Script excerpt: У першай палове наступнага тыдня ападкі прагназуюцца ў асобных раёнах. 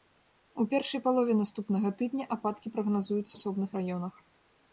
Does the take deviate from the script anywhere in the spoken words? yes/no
yes